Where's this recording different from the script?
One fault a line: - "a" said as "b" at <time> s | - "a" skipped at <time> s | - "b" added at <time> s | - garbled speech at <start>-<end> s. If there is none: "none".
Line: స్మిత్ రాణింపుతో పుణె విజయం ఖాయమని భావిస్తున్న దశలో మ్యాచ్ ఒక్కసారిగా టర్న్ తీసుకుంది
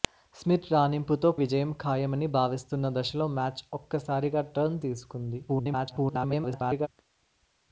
- "పుణె" skipped at 1.3 s
- garbled speech at 5.5-6.9 s